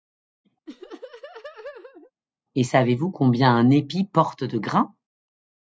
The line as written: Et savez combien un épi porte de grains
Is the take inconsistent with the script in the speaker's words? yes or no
yes